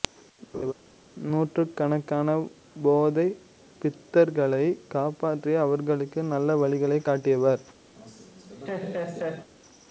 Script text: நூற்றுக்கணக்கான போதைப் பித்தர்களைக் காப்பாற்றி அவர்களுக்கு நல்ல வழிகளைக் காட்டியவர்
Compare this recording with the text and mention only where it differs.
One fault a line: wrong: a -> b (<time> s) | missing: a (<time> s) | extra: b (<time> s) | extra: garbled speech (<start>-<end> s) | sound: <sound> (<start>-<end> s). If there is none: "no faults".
sound: laugh (0.5-0.7 s)
sound: laugh (7.9-9.5 s)